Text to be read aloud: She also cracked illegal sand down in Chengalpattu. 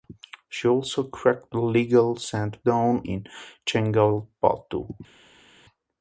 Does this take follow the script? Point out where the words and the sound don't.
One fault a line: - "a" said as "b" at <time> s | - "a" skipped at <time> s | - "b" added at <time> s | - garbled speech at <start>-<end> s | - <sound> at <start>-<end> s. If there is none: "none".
none